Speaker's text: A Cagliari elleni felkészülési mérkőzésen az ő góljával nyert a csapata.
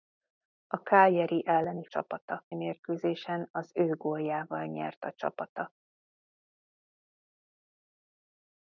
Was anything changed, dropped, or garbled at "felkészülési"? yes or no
yes